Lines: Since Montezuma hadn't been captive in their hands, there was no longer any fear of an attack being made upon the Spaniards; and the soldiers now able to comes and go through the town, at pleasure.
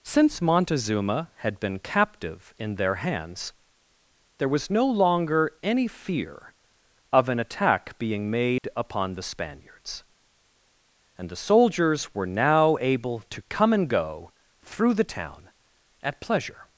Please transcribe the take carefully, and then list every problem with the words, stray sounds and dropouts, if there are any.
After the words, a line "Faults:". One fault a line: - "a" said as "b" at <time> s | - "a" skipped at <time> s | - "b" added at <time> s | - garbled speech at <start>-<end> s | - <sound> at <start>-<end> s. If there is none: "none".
Since Montezuma had been captive in their hands, there was no longer any fear of an attack being made upon the Spaniards; and the soldiers were now able to come and go through the town, at pleasure.
Faults:
- "hadn't" said as "had" at 1.4 s
- dropout at 8.6-8.6 s
- "were" added at 12.1 s
- "comes" said as "come" at 13.5 s